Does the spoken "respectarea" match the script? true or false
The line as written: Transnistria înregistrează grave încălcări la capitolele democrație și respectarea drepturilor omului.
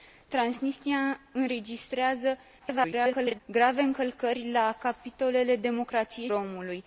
false